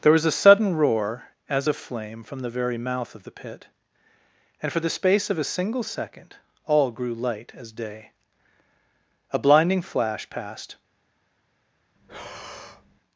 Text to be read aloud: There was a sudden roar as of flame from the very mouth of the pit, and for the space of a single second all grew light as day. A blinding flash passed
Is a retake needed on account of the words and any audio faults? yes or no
yes